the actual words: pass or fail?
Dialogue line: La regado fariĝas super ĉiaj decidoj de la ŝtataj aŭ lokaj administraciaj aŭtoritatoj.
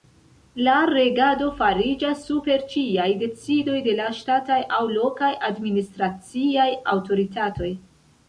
pass